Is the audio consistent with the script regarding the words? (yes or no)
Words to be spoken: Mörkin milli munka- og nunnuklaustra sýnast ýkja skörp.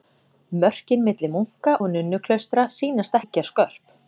yes